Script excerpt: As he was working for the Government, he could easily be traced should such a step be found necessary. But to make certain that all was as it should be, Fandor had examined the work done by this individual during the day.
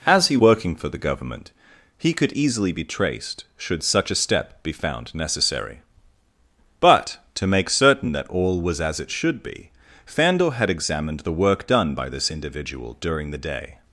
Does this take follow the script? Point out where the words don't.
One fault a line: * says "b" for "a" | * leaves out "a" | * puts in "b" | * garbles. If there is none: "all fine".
* leaves out "was"